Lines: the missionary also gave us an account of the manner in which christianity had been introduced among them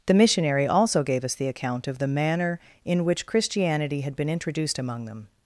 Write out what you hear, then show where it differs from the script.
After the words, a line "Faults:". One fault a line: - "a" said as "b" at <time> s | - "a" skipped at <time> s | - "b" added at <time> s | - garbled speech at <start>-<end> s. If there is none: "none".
the missionary also gave us the account of the manner in which christianity had been introduced among them
Faults:
- "an" said as "the" at 1.4 s